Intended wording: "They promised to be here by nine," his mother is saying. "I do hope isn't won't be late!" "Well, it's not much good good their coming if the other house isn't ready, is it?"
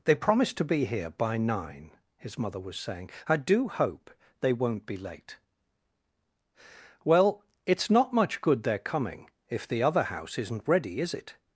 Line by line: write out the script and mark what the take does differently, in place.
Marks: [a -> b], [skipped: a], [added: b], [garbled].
"They promised to be here by nine," his mother [is -> was] saying. "I do hope [isn't -> they] won't be late!" "Well, it's not much good [skipped: good] their coming if the other house isn't ready, is it?"